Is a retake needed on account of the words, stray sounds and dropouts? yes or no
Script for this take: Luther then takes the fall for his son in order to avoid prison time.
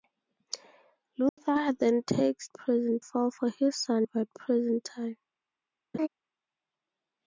yes